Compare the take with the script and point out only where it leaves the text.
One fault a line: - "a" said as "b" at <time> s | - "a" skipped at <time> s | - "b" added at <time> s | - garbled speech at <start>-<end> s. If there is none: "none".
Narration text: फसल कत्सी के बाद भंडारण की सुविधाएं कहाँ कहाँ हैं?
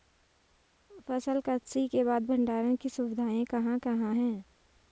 none